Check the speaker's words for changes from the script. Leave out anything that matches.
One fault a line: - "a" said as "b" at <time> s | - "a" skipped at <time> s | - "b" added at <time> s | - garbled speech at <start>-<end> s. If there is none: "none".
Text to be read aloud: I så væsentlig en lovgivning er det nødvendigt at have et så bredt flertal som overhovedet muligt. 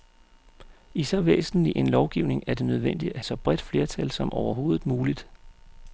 - "have et" skipped at 3.2 s